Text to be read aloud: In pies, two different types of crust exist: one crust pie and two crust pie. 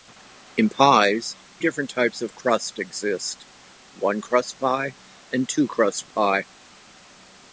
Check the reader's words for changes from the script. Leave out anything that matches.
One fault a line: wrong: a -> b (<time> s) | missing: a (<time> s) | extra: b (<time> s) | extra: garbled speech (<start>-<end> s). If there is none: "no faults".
missing: two (1.3 s)